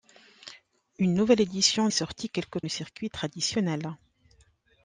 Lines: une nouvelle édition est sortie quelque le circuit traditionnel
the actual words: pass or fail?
pass